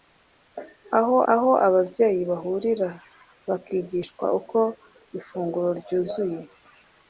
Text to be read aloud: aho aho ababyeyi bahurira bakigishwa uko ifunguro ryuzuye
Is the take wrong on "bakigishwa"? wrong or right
right